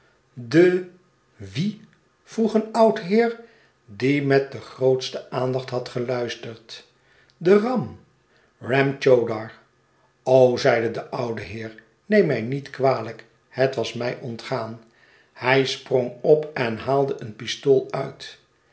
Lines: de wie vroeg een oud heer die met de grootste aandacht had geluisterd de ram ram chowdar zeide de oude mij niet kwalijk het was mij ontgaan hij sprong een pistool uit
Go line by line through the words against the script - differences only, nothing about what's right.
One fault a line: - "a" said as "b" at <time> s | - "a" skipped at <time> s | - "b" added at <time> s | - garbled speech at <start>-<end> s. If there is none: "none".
- "heer neem" added at 11.4 s
- "op en haalde" added at 16.2 s